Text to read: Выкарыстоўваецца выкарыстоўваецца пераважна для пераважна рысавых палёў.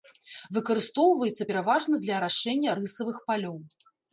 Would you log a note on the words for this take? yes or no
yes